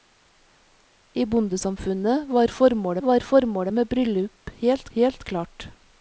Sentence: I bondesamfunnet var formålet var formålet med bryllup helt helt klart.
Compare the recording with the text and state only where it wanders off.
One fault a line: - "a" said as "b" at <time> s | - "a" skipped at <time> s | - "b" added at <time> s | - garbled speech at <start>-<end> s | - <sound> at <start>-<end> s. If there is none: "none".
none